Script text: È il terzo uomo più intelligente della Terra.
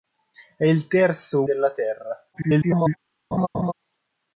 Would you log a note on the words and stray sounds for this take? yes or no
yes